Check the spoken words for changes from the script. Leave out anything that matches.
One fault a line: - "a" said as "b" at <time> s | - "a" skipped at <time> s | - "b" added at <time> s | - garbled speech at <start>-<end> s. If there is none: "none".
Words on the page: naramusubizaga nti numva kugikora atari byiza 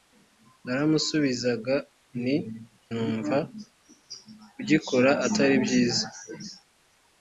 none